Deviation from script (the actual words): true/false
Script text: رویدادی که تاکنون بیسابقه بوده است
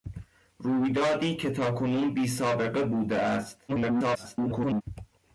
true